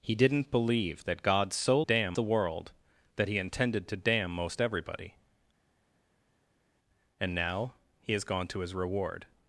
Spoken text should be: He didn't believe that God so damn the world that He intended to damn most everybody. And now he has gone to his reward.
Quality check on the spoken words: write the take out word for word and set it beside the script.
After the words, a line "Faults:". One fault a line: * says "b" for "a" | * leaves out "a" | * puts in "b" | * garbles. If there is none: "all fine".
He didn't believe that God so damn the world that He intended to damn most everybody. And now he has gone to his reward.
Faults:
all fine